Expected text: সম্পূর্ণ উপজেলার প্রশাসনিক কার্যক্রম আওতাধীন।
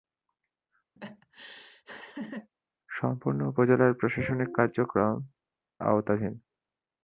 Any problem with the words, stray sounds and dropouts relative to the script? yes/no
yes